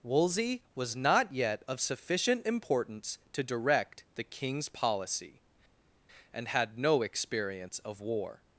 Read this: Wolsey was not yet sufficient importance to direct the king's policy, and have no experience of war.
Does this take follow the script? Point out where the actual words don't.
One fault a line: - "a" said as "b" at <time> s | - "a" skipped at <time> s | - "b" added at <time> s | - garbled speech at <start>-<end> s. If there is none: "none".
- "of" added at 1.7 s
- "have" said as "had" at 6.5 s